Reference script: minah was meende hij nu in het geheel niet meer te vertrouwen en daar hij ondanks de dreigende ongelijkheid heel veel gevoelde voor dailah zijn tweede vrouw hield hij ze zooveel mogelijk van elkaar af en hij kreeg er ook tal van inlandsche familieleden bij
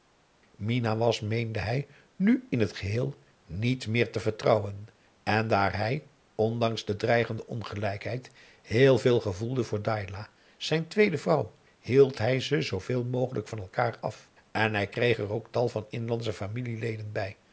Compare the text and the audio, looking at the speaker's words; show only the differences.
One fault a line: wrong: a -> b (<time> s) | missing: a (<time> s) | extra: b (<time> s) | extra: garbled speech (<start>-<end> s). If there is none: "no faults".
no faults